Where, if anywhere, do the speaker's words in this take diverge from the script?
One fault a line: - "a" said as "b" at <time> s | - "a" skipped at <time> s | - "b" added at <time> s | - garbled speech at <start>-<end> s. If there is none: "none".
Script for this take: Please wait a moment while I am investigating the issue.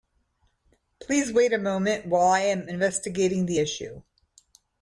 none